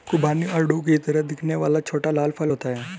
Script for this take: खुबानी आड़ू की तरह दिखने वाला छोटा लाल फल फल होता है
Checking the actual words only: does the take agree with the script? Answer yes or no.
no